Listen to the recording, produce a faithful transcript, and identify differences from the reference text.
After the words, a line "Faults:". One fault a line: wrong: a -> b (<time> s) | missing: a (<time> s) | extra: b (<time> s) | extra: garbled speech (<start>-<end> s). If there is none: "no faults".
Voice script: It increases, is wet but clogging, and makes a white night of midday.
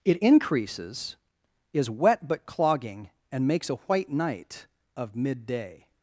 It increases, is wet but clogging, and makes a white night of midday.
Faults:
no faults